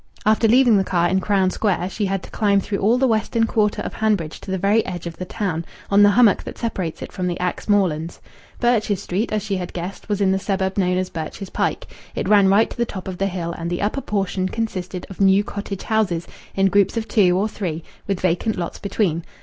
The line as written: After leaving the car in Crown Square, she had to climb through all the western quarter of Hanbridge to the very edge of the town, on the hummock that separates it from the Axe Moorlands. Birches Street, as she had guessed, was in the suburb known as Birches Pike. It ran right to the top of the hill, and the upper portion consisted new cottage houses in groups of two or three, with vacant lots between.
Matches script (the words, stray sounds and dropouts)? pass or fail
fail